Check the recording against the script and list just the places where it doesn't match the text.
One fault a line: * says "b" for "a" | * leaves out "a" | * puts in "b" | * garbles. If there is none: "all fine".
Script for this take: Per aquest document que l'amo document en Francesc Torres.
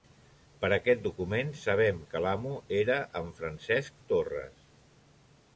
* puts in "sabem"
* says "era" for "document"